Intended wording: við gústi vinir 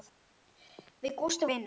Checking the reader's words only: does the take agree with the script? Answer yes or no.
yes